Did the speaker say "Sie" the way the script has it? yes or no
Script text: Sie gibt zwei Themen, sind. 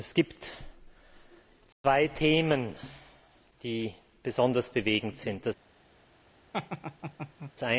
no